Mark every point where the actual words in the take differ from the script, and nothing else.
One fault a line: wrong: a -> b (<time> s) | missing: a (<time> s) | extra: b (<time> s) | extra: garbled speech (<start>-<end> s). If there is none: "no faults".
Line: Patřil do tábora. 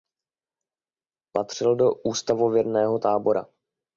extra: ústavověrného (1.9 s)